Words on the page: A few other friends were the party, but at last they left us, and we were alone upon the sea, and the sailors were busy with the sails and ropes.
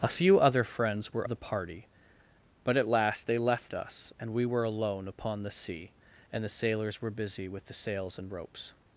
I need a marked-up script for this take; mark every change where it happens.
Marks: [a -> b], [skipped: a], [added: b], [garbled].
A few other friends were the party, but at last they left us, and we were alone upon the sea, and the sailors were busy with the sails and ropes.